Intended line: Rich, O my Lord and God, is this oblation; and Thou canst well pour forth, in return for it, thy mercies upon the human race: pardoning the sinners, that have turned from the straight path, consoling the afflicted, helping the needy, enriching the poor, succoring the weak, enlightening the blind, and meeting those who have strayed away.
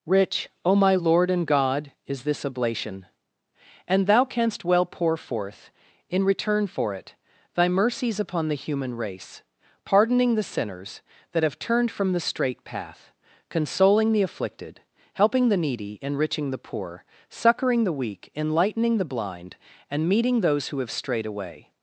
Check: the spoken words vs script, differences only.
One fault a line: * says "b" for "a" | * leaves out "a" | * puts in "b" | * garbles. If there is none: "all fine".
all fine